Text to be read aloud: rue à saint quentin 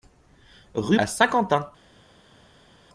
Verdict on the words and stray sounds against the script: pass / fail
pass